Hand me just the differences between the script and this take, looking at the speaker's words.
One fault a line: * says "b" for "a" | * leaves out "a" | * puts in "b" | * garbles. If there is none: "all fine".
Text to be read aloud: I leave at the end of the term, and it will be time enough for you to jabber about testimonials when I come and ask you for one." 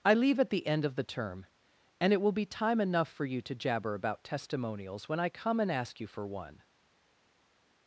all fine